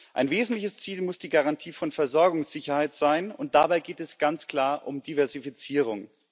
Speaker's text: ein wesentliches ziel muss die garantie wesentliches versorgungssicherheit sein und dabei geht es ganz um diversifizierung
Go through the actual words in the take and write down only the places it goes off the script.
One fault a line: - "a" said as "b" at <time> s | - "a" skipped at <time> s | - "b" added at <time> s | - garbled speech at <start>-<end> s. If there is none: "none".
- "wesentliches" said as "von" at 1.7 s
- "klar" added at 4.5 s